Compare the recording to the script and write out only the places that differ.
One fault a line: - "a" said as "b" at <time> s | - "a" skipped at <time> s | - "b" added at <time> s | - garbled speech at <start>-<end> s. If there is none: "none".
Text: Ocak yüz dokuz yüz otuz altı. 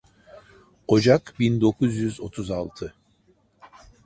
- "yüz" said as "bin" at 1.4 s